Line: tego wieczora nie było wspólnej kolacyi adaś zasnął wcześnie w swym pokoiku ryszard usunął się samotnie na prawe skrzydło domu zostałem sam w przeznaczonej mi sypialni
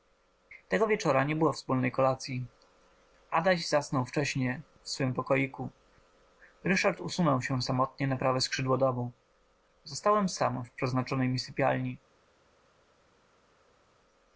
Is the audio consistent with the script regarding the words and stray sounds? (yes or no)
yes